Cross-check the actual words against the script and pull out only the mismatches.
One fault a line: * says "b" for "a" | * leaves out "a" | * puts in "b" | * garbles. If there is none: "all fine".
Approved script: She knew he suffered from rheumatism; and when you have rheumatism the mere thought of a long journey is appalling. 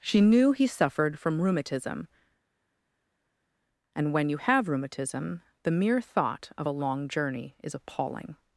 all fine